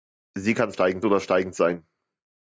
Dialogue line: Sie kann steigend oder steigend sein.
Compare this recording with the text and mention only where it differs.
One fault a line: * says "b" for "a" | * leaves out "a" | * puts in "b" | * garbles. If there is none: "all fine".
all fine